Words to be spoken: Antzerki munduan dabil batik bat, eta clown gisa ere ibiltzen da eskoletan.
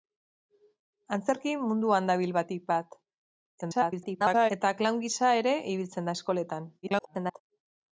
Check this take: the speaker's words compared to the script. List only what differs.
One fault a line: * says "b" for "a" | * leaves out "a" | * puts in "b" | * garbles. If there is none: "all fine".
* garbles
* garbles